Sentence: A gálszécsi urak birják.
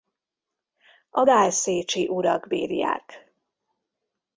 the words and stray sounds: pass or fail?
pass